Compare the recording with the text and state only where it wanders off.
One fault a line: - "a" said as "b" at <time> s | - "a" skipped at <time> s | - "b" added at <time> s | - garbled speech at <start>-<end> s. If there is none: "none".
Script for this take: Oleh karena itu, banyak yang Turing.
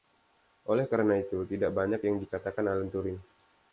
- "tidak" added at 1.4 s
- "dikatakan Alan" added at 2.2 s